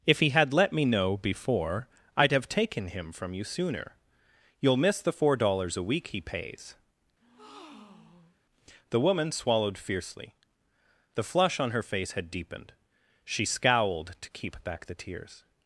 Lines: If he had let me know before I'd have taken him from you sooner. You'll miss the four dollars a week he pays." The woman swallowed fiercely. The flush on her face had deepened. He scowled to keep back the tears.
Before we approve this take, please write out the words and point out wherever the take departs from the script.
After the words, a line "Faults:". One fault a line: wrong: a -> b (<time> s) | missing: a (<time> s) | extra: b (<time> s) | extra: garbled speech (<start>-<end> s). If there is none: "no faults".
If he had let me know before I'd have taken him from you sooner. You'll miss the four dollars a week he pays." The woman swallowed fiercely. The flush on her face had deepened. She scowled to keep back the tears.
Faults:
wrong: He -> She (13.2 s)